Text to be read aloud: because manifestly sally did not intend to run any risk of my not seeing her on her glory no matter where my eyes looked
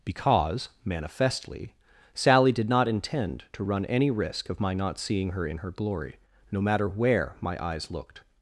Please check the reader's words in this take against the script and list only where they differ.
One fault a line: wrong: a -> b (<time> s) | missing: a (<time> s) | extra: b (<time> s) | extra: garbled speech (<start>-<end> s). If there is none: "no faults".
wrong: on -> in (5.5 s)